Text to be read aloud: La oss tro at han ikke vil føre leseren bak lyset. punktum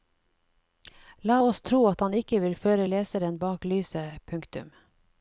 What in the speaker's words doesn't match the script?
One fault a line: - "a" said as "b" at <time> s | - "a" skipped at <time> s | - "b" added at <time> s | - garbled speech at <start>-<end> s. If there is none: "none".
none